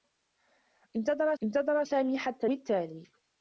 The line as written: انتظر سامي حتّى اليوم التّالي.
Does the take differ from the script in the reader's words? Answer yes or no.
yes